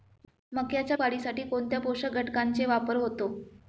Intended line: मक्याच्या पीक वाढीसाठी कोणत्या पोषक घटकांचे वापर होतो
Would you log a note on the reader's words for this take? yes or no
yes